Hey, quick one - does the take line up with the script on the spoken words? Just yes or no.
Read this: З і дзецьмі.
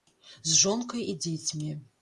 no